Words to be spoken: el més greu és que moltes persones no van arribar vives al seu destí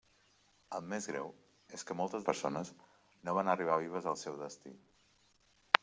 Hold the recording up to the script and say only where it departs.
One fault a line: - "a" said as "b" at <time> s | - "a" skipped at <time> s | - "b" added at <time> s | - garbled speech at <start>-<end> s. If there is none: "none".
none